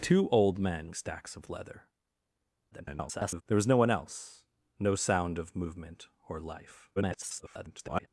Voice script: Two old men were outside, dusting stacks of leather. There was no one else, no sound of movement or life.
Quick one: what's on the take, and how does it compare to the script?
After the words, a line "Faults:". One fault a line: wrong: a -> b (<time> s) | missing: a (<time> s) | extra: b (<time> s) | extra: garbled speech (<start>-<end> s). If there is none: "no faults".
Two old men stacks of leather. [garbled] There was no one else, no sound of movement or life. [garbled]
Faults:
missing: were outside dusting (0.9 s)
extra: garbled speech (2.7-3.4 s)
extra: garbled speech (7.0-8.1 s)